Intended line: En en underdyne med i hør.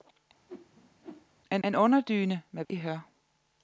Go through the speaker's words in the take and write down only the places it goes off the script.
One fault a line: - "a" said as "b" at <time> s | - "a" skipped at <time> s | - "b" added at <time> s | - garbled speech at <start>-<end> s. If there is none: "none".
none